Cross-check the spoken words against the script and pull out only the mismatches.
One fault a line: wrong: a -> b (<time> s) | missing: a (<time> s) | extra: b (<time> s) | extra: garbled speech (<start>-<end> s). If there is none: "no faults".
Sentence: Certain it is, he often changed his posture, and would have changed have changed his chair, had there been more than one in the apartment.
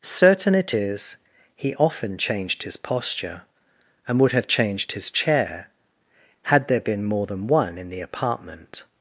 missing: have changed (4.9 s)